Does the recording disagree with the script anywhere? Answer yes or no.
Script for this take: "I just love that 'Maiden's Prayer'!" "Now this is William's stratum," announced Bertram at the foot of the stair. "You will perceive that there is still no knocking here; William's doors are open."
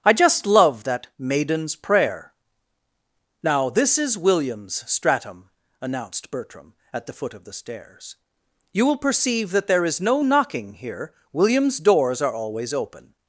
yes